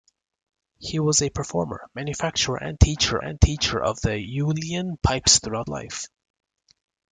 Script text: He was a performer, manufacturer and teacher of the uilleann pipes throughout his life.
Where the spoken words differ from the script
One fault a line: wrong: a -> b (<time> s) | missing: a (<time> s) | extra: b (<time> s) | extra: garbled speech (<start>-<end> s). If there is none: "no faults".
extra: and teacher (3.2 s)
missing: his (5.7 s)